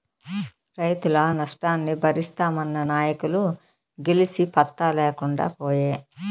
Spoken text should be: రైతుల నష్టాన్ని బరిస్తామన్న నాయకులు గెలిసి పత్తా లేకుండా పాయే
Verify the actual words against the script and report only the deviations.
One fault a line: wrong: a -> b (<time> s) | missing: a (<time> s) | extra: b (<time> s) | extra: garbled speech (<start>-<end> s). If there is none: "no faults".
no faults